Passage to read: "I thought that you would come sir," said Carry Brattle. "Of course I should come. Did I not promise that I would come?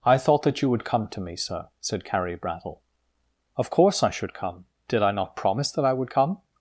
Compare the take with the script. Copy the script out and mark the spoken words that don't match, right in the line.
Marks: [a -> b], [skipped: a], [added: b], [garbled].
"I thought that you would come [added: to me] sir," said Carry Brattle. "Of course I should come. Did I not promise that I would come?